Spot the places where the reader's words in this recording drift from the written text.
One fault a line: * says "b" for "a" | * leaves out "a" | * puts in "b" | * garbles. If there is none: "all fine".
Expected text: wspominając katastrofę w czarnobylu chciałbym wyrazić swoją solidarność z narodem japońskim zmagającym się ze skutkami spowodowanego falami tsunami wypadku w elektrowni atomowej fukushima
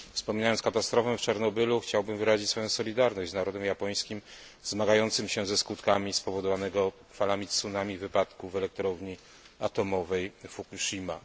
all fine